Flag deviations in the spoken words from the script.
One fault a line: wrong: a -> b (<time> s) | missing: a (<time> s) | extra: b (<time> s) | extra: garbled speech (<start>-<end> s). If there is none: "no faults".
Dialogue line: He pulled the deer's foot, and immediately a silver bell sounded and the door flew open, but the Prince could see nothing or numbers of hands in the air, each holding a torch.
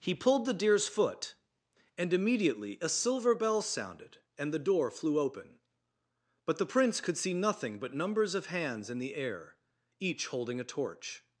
wrong: or -> but (7.8 s)